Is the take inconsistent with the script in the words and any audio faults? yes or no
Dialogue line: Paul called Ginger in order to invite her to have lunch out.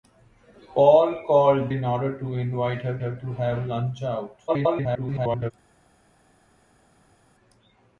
yes